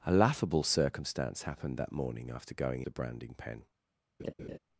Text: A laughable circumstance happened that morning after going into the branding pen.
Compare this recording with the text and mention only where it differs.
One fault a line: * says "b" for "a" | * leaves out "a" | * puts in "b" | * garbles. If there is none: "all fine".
* leaves out "into"